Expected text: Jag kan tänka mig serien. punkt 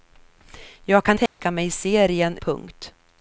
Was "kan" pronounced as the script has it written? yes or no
yes